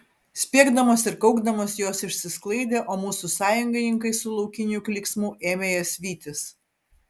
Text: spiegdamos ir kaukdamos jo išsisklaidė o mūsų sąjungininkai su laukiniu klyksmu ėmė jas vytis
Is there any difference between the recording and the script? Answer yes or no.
yes